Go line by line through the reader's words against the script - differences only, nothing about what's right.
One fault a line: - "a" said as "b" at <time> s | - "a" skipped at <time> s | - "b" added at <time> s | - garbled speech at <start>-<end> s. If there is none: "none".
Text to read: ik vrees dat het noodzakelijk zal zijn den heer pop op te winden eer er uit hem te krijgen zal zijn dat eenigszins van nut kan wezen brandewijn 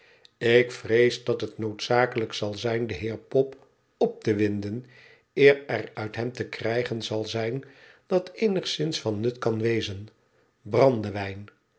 none